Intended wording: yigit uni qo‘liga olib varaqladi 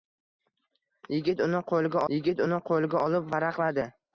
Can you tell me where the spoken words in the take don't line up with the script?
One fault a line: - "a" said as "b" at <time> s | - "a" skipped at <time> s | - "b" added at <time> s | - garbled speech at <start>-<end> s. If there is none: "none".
- "yigit uni qo‘liga" added at 2.1 s